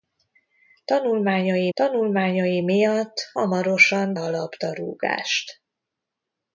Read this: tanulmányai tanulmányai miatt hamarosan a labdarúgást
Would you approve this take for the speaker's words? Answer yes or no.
yes